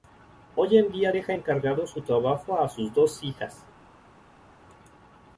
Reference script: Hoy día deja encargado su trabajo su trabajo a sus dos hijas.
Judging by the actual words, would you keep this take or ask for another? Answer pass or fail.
fail